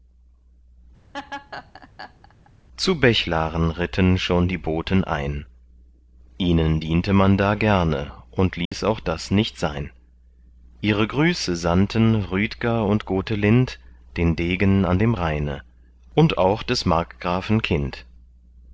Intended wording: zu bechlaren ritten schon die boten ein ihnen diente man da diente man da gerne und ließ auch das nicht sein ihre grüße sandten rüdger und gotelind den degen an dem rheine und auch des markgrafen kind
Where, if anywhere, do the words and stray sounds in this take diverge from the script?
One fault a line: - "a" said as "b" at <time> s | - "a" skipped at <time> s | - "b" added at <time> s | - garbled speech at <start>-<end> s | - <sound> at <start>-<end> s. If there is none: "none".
- laugh at 1.1-2.5 s
- "diente man da" skipped at 7.6 s
- dropout at 8.7-8.7 s